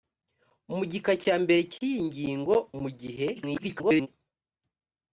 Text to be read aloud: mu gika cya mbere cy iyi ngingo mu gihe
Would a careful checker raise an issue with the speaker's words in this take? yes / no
yes